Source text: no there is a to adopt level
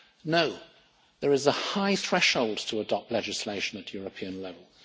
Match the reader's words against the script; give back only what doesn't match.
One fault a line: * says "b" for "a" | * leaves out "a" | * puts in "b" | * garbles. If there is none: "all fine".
* puts in "high threshold"
* puts in "legislation at european"